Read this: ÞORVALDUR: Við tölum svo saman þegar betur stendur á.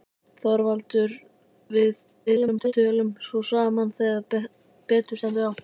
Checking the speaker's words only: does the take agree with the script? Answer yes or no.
no